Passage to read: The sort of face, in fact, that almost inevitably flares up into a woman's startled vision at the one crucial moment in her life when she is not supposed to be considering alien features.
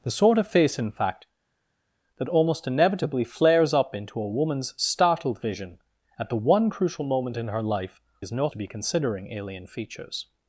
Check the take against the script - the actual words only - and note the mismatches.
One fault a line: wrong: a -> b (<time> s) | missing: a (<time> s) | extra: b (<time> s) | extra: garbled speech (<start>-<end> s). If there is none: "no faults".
missing: when she (8.0 s)
missing: supposed (8.5 s)